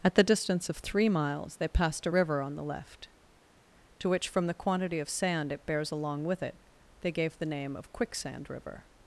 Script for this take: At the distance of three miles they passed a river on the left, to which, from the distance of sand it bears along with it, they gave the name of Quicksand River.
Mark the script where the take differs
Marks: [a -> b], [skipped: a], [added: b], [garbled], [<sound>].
At the distance of three miles they passed a river on the left, to which, from the [distance -> quantity] of sand it bears along with it, they gave the name of Quicksand River.